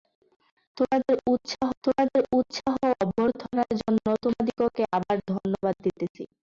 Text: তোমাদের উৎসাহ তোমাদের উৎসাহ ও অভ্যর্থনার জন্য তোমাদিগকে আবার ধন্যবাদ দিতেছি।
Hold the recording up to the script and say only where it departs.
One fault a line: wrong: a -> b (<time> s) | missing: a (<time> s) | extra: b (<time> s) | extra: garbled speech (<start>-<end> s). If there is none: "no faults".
no faults